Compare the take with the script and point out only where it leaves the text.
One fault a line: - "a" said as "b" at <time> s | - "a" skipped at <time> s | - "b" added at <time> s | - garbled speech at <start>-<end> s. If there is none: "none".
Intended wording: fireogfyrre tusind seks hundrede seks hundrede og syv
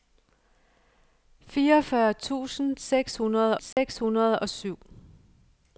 none